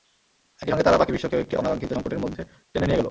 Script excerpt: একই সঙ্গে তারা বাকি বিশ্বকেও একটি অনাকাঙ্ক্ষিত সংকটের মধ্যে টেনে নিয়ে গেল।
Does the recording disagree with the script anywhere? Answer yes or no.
no